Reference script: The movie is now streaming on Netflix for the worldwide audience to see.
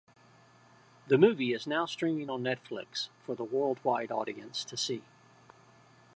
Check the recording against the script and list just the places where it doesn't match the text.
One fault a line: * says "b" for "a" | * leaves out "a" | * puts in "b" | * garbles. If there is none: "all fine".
all fine